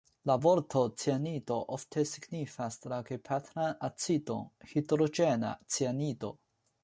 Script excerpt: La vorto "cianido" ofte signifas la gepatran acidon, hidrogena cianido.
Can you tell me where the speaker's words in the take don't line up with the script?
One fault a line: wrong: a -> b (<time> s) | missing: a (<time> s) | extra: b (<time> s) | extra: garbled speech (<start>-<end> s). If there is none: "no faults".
no faults